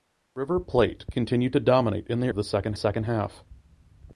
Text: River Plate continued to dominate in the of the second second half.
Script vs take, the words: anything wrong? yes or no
no